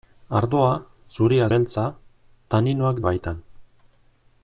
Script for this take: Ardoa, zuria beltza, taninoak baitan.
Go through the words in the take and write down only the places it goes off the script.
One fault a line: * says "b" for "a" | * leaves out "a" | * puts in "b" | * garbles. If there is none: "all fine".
all fine